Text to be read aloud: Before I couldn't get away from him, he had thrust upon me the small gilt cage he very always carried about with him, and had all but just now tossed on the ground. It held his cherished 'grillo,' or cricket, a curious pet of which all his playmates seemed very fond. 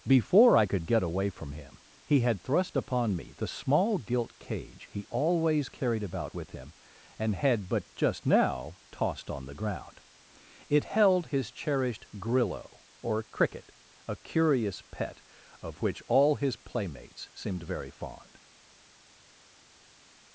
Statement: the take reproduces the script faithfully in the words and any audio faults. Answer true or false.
false